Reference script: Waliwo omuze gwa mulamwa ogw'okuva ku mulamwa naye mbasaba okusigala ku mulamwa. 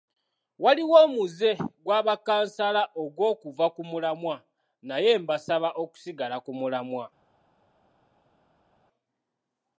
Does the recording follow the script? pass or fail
fail